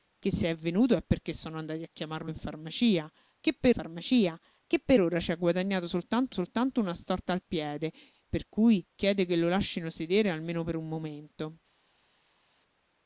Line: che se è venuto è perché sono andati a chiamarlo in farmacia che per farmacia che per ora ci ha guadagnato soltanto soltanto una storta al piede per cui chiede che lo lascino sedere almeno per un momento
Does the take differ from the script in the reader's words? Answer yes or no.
no